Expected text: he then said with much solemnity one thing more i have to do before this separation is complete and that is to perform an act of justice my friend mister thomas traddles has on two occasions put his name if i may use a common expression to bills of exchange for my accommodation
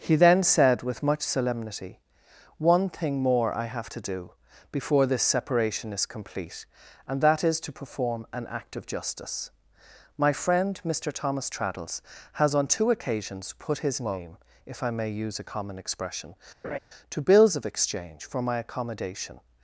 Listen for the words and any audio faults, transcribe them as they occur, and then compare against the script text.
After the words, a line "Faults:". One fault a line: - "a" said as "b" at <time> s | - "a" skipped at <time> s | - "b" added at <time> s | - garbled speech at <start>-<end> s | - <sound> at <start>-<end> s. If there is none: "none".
he then said with much solemnity one thing more i have to do before this separation is complete and that is to perform an act of justice my friend mister thomas traddles has on two occasions put his name if i may use a common expression to bills of exchange for my accommodation
Faults:
- laugh at 16.6-16.8 s